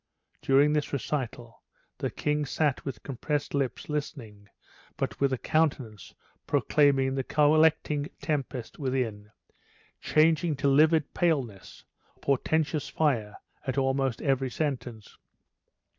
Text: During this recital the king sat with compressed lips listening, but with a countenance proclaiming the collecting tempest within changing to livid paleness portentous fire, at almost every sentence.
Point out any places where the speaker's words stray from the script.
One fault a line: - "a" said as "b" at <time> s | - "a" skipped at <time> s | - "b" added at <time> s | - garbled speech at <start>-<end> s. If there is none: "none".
none